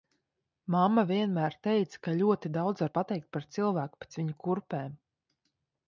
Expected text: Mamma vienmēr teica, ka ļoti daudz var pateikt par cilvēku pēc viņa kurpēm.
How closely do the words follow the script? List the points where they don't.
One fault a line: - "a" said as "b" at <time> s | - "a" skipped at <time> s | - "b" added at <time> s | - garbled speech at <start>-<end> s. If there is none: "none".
none